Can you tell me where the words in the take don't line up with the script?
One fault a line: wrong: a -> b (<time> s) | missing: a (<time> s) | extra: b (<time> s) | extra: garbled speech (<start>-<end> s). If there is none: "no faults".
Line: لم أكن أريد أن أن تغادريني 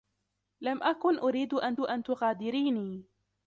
no faults